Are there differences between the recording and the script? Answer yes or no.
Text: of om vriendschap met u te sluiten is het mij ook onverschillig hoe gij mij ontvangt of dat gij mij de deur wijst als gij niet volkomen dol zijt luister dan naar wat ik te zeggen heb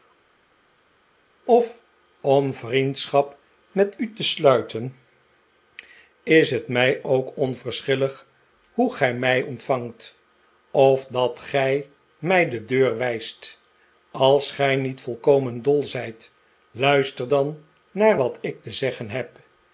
no